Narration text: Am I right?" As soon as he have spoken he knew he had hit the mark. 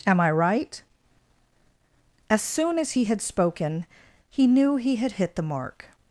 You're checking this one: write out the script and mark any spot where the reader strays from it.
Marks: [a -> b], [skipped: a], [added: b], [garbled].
Am I right?" As soon as he [have -> had] spoken he knew he had hit the mark.